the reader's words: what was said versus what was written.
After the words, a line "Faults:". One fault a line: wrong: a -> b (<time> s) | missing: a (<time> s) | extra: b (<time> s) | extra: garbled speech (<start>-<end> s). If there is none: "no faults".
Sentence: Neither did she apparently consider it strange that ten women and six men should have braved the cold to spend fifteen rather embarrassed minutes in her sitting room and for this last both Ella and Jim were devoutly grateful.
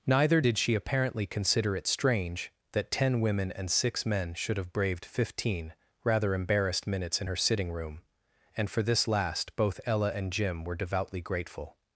Neither did she apparently consider it strange that ten women and six men should have braved fifteen rather embarrassed minutes in her sitting room and for this last both Ella and Jim were devoutly grateful.
Faults:
missing: the cold to spend (5.0 s)